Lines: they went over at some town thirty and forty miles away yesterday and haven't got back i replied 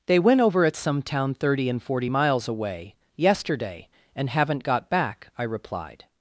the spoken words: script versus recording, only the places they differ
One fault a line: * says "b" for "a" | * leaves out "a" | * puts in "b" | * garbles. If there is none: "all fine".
all fine